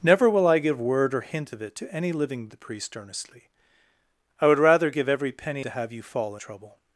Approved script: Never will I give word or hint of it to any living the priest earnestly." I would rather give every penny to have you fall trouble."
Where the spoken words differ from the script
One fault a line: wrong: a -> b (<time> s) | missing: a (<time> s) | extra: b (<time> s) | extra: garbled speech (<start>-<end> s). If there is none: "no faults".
no faults